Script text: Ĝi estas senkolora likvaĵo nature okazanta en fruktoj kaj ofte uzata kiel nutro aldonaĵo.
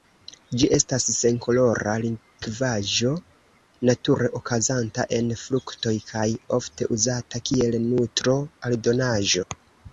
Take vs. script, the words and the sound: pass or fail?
pass